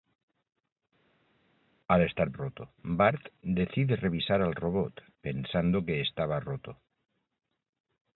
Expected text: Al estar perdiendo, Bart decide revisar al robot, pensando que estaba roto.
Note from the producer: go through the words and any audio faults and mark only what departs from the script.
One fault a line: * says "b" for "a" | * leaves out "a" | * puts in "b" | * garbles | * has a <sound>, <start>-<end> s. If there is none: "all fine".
* says "roto" for "perdiendo"